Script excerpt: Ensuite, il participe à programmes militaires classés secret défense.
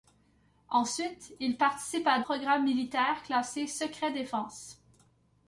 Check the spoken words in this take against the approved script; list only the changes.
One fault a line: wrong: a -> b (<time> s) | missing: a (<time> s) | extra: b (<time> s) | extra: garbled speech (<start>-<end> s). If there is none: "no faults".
no faults